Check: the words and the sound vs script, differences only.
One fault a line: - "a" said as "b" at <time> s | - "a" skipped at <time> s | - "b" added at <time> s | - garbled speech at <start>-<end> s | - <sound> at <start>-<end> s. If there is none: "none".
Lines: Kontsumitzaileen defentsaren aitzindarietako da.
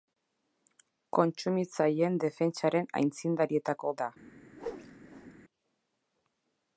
- whoosh at 4.5-5.3 s